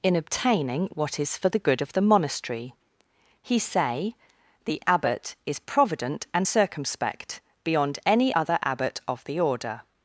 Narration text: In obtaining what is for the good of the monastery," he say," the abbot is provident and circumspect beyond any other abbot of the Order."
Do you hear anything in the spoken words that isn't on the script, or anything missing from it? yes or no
no